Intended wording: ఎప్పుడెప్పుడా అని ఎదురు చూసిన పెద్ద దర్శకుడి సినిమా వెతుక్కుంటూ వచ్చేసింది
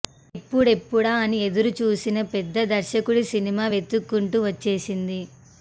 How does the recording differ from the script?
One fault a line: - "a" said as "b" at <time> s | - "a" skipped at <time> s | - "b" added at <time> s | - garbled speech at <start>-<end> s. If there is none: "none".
none